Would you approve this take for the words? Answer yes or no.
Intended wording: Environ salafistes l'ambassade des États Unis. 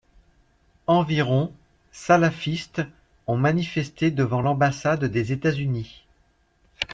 no